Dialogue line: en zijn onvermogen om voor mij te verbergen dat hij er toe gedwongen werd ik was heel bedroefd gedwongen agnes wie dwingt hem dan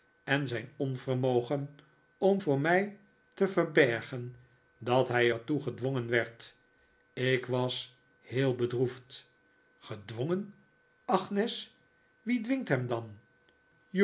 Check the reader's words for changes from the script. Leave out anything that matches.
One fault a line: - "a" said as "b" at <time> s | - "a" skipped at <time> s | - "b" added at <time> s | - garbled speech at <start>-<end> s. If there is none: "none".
none